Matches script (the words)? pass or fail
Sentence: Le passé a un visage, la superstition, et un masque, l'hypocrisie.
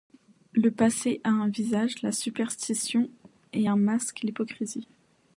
pass